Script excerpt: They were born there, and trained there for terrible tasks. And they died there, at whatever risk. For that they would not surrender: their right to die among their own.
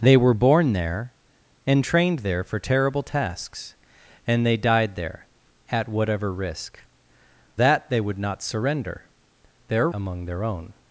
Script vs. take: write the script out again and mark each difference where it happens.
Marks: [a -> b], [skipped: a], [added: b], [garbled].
They were born there, and trained there for terrible tasks. And they died there, at whatever risk. [skipped: For] that they would not surrender: their [skipped: right to die] among their own.